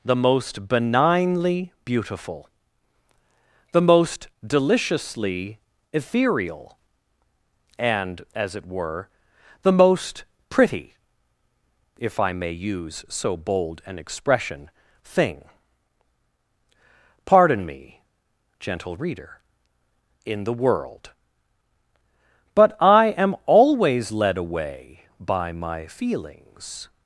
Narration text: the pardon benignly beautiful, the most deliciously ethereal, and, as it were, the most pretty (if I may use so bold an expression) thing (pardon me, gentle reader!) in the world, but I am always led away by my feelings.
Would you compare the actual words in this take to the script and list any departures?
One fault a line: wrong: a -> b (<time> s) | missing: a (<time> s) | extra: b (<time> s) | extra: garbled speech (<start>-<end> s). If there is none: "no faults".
wrong: pardon -> most (0.1 s)